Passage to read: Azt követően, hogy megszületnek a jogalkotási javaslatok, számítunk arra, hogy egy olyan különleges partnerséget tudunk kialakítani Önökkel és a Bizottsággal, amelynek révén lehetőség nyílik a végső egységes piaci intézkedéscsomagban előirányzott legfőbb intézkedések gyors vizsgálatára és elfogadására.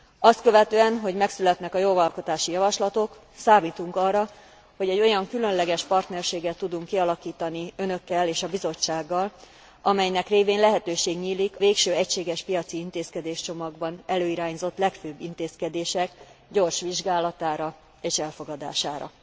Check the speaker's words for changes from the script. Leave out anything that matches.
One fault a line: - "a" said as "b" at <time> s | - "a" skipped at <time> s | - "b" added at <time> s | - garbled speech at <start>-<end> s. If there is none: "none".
- "a" skipped at 11.6 s